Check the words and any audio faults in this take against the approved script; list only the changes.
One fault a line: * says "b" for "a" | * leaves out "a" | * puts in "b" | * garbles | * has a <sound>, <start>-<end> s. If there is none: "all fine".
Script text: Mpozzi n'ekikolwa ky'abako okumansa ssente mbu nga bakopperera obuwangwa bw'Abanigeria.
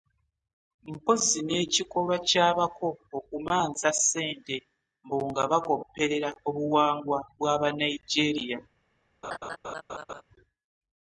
* has a laugh, 9.2-10.2 s